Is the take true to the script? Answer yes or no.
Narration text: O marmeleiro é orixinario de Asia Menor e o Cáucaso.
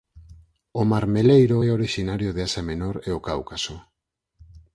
yes